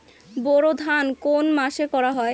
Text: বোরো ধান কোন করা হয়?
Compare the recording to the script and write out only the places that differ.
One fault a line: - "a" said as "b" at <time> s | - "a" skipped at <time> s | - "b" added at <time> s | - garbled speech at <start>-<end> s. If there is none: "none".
- "মাসে" added at 1.5 s